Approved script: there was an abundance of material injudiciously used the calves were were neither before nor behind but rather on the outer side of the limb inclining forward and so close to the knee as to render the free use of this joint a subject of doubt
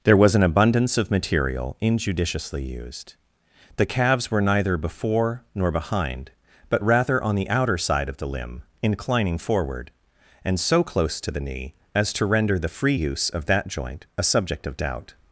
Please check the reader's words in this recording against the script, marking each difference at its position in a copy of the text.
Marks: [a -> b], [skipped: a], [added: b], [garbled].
there was an abundance of material injudiciously used the calves were [skipped: were] neither before nor behind but rather on the outer side of the limb inclining forward and so close to the knee as to render the free use of [this -> that] joint a subject of doubt